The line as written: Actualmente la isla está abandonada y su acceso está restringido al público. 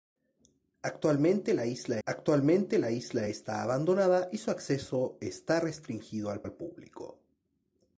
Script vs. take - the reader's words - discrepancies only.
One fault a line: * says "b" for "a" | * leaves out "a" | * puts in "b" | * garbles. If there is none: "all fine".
* puts in "actualmente la isla"
* puts in "al"